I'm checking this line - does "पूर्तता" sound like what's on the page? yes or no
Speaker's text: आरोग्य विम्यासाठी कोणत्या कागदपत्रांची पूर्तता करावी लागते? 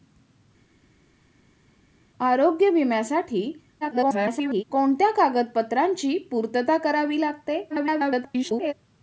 yes